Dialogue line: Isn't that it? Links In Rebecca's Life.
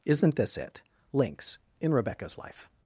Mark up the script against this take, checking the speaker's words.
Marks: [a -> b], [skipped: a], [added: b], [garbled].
Isn't [that -> this] it? Links In Rebecca's Life.